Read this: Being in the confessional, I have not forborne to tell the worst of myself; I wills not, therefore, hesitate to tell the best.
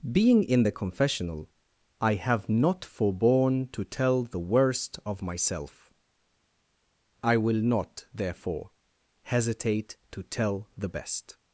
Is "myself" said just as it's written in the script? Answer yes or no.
yes